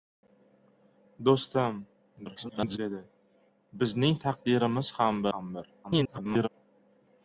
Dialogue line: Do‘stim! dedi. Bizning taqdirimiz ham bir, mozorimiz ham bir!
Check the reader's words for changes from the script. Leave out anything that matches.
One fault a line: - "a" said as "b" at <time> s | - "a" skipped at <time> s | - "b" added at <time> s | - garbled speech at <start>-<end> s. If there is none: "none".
- garbled speech at 2.3-2.8 s
- "bir mozorimiz" skipped at 5.3 s
- garbled speech at 5.8-6.5 s